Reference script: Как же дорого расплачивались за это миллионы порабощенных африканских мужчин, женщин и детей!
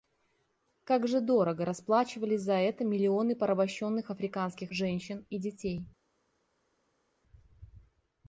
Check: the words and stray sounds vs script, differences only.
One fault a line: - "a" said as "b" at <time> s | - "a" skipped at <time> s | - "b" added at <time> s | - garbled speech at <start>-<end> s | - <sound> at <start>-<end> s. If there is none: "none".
- "мужчин" skipped at 4.7 s